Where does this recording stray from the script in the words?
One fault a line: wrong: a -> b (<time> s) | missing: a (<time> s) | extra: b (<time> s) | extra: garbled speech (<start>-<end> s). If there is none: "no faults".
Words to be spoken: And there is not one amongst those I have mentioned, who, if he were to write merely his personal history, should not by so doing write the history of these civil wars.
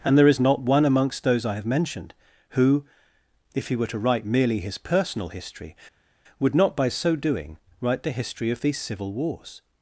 wrong: should -> would (6.4 s)